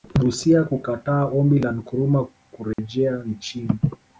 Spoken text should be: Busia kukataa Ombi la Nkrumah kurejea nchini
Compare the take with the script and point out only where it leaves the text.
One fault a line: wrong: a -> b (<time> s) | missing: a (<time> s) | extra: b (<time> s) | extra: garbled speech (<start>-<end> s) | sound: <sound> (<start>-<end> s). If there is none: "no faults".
sound: dropout (2.7-2.8 s)